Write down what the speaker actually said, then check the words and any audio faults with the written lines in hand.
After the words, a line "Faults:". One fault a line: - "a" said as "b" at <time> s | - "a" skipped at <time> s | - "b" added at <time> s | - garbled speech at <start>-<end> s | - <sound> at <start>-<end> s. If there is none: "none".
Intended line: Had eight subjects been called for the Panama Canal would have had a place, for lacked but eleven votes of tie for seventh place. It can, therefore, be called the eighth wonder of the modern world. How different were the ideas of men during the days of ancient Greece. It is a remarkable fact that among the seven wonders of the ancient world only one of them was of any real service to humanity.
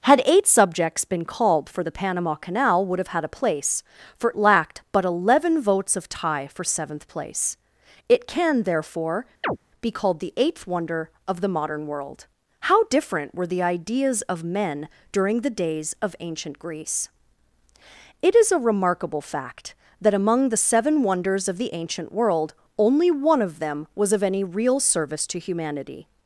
Had eight subjects been called for the Panama Canal would have had a place, for lacked but eleven votes of tie for seventh place. It can, therefore, be called the eighth wonder of the modern world. How different were the ideas of men during the days of ancient Greece. It is a remarkable fact that among the seven wonders of the ancient world only one of them was of any real service to humanity.
Faults:
- chirp at 9.4-9.6 s